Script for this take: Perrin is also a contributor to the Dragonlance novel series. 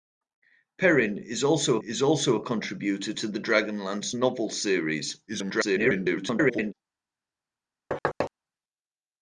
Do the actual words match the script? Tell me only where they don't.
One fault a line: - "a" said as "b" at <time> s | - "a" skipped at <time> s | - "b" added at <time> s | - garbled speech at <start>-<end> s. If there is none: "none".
- "is also" added at 1.8 s
- garbled speech at 5.3-6.7 s